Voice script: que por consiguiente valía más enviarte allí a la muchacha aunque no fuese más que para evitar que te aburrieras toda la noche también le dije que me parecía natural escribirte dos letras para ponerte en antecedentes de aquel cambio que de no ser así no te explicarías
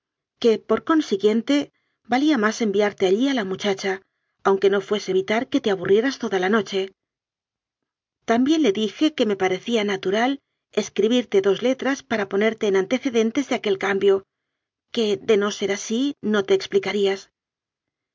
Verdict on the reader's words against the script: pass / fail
fail